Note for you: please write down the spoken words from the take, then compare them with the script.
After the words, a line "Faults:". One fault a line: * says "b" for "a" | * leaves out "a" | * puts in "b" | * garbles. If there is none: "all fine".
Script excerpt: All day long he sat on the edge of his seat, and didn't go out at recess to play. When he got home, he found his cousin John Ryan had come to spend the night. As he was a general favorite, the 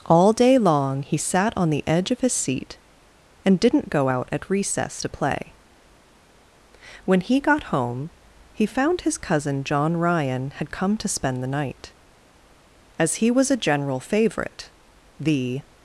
All day long he sat on the edge of his seat, and didn't go out at recess to play. When he got home, he found his cousin John Ryan had come to spend the night. As he was a general favorite, the
Faults:
all fine